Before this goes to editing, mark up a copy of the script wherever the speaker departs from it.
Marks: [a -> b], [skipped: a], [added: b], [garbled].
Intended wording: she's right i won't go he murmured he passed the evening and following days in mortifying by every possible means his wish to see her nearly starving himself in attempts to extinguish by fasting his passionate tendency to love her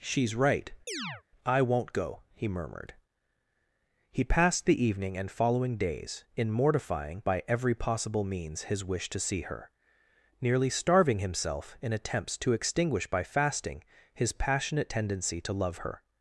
she's right i won't go he murmured he passed the evening and following days in mortifying by every possible means his wish to see her nearly starving himself in attempts to extinguish by fasting his passionate tendency to love her